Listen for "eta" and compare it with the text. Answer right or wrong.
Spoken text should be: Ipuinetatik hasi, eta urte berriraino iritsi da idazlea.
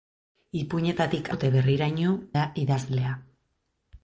wrong